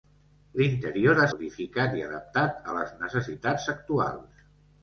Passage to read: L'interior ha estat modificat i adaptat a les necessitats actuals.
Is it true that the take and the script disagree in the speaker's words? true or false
true